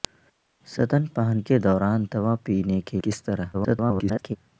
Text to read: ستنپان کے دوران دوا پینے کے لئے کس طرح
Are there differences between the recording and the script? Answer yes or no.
yes